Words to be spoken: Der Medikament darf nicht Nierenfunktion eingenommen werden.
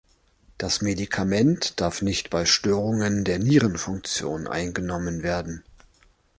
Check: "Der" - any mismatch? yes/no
yes